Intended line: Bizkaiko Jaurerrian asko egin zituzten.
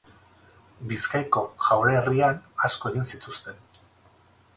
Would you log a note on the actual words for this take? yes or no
no